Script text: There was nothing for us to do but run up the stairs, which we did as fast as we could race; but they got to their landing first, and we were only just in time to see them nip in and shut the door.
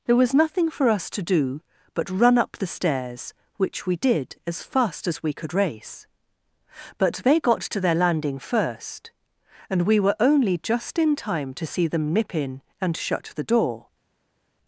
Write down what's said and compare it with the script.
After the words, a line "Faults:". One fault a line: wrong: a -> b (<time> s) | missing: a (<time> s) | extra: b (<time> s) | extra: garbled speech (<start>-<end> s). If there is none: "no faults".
There was nothing for us to do but run up the stairs, which we did as fast as we could race; but they got to their landing first, and we were only just in time to see them nip in and shut the door.
Faults:
no faults